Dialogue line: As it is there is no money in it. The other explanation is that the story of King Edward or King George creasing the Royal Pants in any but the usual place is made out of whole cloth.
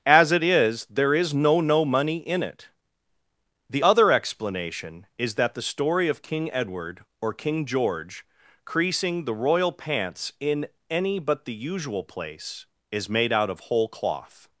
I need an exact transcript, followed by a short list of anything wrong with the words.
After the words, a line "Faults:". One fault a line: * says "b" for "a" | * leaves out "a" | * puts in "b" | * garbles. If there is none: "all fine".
As it is there is no no money in it. The other explanation is that the story of King Edward or King George creasing the Royal Pants in any but the usual place is made out of whole cloth.
Faults:
* puts in "no"